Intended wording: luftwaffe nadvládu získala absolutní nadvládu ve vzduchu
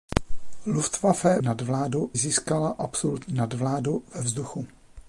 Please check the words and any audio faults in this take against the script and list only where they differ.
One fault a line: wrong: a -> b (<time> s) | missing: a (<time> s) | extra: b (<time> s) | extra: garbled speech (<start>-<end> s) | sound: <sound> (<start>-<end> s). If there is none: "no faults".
no faults